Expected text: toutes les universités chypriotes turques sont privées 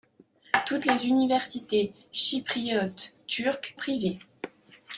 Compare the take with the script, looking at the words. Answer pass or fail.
fail